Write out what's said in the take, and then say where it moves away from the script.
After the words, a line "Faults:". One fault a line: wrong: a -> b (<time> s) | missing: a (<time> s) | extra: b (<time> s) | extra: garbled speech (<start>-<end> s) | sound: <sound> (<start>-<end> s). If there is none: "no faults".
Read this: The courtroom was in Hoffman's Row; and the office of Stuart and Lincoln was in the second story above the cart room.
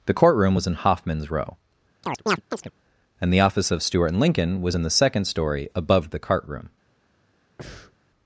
The courtroom was in Hoffman's Row; and the office of Stuart and Lincoln was in the second story above the cart room.
Faults:
sound: chirp (2.0-2.7 s)
sound: breath (7.6-8.0 s)